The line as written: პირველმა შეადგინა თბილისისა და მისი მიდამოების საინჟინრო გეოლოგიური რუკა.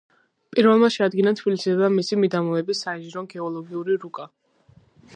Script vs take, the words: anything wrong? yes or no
no